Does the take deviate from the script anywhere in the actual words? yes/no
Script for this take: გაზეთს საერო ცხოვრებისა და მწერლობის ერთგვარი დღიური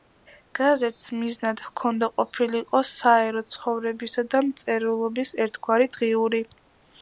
yes